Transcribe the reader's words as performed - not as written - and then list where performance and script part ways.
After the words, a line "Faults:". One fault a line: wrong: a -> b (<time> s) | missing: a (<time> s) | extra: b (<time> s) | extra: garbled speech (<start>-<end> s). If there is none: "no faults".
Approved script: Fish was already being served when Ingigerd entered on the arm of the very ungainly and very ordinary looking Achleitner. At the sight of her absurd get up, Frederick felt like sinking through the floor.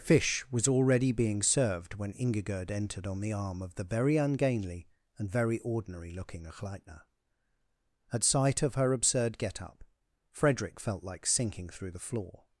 Fish was already being served when Ingigerd entered on the arm of the very ungainly and very ordinary looking Achleitner. At sight of her absurd get up, Frederick felt like sinking through the floor.
Faults:
missing: the (8.2 s)